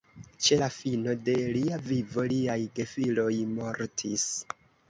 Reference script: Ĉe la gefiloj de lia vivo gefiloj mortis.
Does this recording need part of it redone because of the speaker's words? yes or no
yes